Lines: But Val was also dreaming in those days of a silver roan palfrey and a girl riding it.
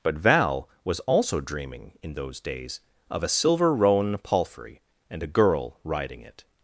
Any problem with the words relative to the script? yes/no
no